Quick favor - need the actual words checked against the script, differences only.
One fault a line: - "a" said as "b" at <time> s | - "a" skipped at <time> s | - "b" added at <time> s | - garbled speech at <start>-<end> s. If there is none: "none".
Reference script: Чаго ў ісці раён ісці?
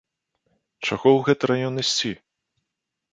- "ісці" said as "гэты" at 1.2 s